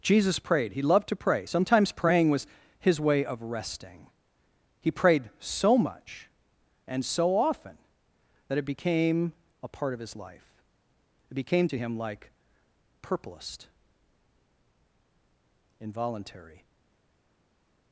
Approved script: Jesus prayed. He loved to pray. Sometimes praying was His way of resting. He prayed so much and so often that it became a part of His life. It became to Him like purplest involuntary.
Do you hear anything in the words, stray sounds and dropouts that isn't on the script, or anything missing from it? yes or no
no